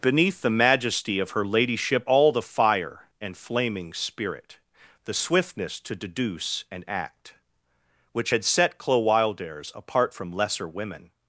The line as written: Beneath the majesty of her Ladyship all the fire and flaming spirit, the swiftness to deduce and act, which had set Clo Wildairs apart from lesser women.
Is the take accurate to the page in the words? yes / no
yes